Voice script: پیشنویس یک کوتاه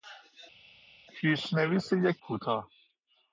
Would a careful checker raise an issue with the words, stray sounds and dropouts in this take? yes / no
no